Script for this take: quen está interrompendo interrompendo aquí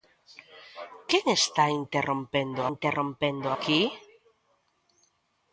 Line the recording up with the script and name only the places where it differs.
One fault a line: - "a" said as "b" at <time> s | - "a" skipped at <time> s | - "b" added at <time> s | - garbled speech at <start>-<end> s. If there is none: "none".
none